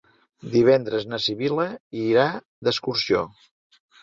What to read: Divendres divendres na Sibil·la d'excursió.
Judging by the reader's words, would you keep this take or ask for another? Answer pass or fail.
fail